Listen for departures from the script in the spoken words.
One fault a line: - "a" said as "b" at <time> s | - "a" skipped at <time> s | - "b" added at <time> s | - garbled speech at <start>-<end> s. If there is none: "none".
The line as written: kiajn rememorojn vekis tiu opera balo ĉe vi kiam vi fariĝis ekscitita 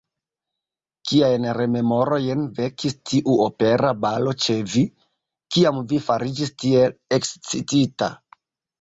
- "tiel" added at 6.7 s